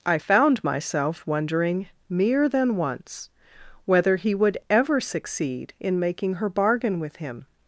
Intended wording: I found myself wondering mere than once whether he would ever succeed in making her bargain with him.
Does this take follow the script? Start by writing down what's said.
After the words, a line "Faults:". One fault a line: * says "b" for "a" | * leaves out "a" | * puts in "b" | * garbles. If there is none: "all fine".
I found myself wondering mere than once whether he would ever succeed in making her bargain with him.
Faults:
all fine